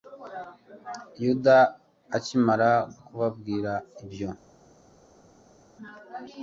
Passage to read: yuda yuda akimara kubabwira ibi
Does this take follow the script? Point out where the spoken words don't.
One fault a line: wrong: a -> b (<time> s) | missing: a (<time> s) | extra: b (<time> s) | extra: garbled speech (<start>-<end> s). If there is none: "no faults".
missing: yuda (1.6 s)
wrong: ibi -> ibyo (4.0 s)